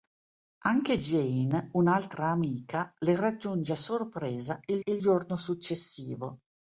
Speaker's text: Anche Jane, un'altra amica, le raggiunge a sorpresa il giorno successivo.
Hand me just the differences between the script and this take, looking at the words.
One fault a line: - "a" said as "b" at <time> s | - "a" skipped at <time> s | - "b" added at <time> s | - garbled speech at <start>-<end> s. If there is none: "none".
- "il" added at 4.8 s